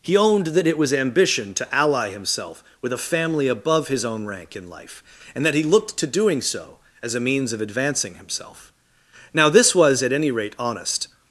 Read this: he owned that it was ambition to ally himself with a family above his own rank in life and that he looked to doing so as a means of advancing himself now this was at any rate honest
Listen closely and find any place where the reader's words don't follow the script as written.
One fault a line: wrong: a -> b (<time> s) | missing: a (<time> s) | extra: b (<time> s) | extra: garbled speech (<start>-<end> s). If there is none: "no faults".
no faults